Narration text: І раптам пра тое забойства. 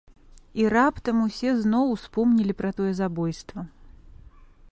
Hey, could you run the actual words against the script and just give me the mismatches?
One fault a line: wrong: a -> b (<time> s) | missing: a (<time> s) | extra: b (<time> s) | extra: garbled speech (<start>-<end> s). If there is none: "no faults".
extra: усе зноў успомнілі (1.2 s)